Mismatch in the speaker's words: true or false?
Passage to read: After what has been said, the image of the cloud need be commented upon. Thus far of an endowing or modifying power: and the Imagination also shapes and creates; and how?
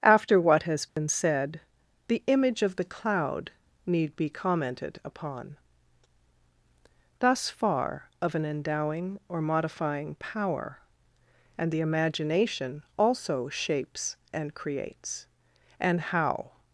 false